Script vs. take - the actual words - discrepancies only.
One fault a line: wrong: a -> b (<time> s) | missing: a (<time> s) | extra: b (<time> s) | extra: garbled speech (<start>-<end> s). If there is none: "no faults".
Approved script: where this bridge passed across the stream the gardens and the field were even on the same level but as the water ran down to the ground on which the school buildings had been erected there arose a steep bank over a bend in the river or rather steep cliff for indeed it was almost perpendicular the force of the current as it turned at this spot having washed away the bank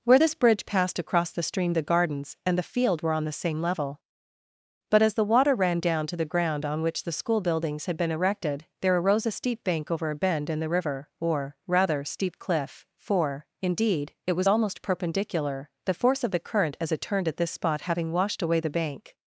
missing: even (3.1 s)